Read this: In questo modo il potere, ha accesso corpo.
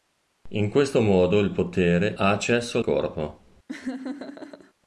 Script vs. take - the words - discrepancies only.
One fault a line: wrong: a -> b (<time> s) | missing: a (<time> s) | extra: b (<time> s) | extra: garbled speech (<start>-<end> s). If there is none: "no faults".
no faults